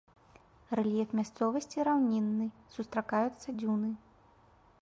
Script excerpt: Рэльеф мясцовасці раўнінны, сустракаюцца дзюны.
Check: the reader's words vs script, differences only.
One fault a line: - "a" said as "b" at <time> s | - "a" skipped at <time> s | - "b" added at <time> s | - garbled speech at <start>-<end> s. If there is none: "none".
none